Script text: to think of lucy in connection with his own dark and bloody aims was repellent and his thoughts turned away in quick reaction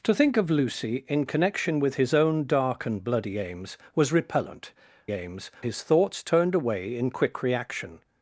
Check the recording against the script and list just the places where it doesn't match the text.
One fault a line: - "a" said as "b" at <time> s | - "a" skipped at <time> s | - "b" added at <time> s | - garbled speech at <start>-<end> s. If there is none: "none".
- "and" said as "aims" at 5.1 s